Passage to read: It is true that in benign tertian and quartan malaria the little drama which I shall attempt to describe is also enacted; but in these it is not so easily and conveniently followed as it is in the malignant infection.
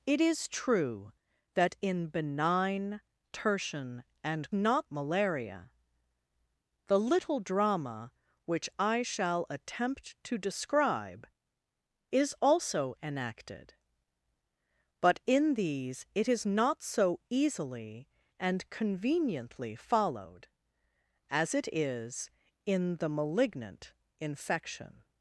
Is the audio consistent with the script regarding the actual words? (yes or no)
no